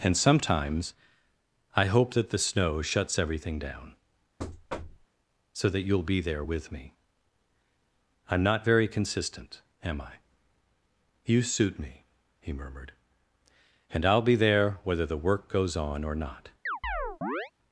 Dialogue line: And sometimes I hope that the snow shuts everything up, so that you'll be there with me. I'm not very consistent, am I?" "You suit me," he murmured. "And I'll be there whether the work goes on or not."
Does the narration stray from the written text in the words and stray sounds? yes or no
yes